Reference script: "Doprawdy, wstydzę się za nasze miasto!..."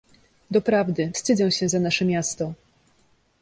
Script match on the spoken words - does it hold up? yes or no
yes